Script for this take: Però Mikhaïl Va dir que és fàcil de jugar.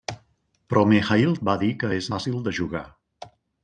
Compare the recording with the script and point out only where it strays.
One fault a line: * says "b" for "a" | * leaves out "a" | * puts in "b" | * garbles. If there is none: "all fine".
all fine